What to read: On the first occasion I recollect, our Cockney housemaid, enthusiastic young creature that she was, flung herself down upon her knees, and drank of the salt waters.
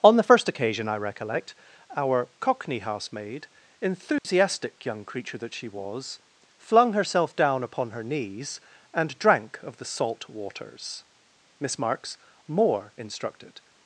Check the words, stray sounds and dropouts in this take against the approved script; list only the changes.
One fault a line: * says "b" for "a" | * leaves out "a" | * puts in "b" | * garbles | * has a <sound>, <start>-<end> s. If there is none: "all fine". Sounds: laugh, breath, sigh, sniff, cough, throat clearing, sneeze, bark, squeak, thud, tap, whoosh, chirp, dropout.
* has a dropout, 4.2-4.2 s
* puts in "Miss Marks more instructed"